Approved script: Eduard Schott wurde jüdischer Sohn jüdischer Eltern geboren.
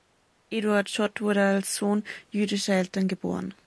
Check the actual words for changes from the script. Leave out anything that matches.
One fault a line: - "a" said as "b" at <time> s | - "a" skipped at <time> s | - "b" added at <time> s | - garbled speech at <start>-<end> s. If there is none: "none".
- "jüdischer" said as "als" at 1.4 s